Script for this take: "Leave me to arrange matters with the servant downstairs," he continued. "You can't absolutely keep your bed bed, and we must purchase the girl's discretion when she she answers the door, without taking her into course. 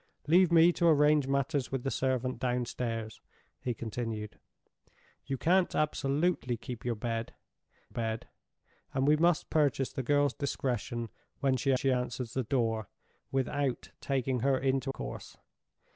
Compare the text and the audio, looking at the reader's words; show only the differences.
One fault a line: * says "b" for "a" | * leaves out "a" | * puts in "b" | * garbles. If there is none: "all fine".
all fine